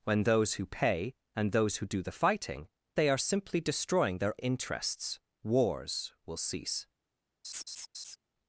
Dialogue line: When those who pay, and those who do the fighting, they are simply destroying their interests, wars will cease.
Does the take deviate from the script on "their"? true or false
false